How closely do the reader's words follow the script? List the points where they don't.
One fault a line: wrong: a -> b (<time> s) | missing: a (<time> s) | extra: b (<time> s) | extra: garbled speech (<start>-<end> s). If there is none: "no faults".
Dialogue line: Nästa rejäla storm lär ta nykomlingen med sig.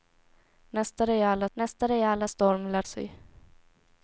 extra: nästa rejäla (1.5 s)
missing: ta nykomlingen med (2.8 s)